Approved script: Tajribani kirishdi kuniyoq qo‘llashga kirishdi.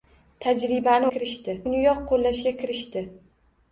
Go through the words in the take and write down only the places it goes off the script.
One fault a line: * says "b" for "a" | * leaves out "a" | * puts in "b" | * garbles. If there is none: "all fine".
all fine